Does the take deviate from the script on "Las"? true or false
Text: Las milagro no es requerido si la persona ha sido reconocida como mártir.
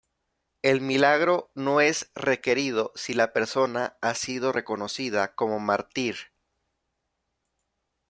true